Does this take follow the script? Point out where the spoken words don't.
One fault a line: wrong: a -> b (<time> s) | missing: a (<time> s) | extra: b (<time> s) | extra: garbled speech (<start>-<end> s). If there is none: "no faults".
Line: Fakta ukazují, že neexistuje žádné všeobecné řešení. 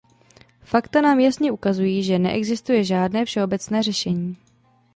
extra: nám jasně (1.0 s)